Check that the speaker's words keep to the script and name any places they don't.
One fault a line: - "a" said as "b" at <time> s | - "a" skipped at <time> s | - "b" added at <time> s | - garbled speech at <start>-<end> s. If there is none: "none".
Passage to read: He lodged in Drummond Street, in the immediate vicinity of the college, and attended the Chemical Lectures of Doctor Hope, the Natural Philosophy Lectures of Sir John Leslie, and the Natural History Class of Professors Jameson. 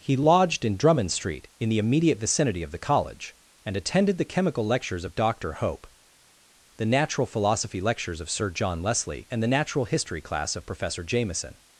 - "Professors" said as "Professor" at 10.6 s